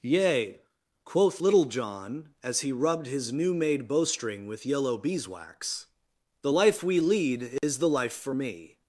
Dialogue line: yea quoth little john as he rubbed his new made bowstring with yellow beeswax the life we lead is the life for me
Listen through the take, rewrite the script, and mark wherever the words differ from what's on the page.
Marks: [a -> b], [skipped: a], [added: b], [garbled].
yea quoth little john as he rubbed his new made bowstring with yellow beeswax the life we lead is the life for me